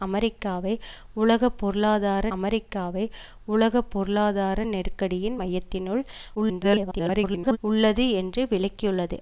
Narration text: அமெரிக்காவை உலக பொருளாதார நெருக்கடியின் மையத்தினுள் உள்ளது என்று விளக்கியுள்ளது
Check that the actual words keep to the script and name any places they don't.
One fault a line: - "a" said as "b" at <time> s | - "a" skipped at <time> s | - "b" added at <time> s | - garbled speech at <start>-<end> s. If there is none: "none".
- "அமெரிக்காவை உலக பொருளாதார" added at 2.3 s
- garbled speech at 6.3-7.6 s